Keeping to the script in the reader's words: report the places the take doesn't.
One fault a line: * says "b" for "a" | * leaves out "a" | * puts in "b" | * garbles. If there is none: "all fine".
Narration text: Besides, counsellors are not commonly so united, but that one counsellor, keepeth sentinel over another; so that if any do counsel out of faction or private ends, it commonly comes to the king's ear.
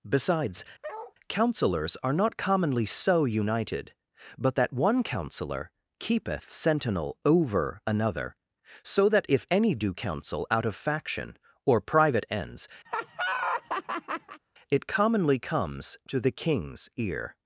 all fine